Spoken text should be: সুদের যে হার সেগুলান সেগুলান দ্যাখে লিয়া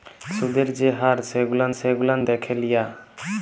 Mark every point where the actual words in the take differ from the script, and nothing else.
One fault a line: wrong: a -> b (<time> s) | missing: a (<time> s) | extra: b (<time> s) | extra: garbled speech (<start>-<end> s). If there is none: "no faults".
no faults